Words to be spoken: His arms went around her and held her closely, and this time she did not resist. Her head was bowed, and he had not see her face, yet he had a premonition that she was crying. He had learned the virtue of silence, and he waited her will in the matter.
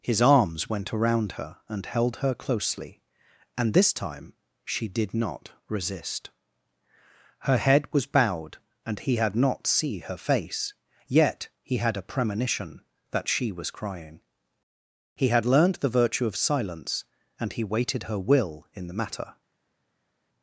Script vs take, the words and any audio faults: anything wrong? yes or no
no